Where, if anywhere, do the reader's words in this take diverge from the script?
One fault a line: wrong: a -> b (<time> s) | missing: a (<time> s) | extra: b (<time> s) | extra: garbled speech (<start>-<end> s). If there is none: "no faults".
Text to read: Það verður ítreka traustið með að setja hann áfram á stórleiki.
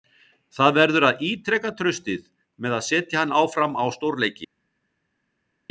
extra: að (1.1 s)